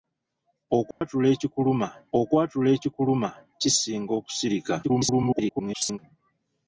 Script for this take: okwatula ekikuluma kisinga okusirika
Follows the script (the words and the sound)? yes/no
no